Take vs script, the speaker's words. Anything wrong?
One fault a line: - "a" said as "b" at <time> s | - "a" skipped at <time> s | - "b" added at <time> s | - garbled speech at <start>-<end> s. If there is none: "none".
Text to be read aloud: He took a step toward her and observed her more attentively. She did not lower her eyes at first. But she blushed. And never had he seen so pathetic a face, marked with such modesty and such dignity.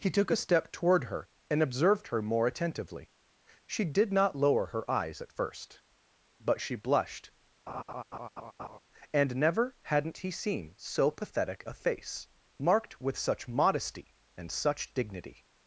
- "had" said as "hadn't" at 9.8 s